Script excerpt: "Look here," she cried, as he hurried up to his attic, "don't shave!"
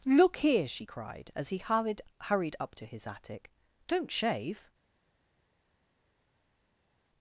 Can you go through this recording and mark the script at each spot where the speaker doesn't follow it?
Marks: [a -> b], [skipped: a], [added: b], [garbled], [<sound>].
"Look here," she cried, as he hurried [added: hurried] up to his attic, "don't shave!"